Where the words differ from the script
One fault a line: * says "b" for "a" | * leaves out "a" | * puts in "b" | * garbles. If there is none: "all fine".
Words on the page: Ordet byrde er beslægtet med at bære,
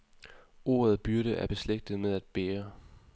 all fine